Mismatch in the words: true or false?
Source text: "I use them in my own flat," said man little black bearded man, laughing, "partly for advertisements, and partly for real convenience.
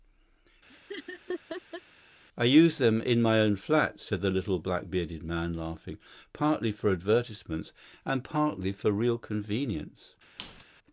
true